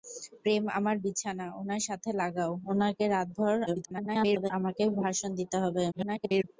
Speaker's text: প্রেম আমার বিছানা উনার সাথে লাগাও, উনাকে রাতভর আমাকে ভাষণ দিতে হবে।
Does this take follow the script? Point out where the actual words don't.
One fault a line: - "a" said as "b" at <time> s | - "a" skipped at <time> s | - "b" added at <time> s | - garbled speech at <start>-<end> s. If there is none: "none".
- garbled speech at 3.7-4.5 s
- garbled speech at 5.9-6.4 s